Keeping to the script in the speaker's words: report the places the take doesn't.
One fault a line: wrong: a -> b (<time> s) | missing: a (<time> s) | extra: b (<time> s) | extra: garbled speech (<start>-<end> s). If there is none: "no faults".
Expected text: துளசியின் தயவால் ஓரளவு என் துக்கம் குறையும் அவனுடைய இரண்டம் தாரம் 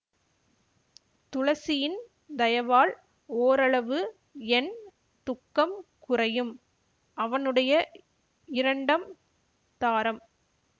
no faults